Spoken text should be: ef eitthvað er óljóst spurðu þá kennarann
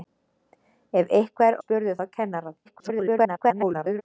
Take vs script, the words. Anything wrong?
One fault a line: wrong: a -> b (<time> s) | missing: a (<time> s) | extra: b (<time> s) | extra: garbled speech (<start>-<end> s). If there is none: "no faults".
missing: óljóst (1.6 s)
extra: garbled speech (2.6-4.0 s)